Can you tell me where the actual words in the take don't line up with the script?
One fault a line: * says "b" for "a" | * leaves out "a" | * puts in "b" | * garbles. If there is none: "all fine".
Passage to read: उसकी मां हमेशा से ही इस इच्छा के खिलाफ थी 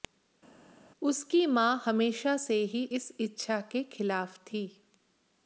all fine